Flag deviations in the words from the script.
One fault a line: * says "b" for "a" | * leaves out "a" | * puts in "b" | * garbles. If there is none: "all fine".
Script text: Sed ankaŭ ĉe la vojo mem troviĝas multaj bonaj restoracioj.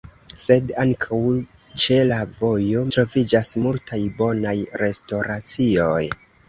* leaves out "mem"